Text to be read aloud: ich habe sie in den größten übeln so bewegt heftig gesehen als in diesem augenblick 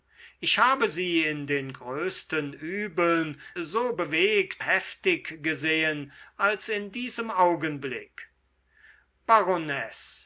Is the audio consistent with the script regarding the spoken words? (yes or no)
yes